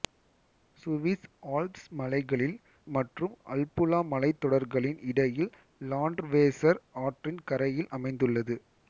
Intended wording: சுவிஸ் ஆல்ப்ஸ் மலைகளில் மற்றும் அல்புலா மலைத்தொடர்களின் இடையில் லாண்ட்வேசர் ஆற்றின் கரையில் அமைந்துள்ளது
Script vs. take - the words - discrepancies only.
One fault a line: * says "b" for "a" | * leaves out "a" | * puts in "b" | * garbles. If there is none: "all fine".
all fine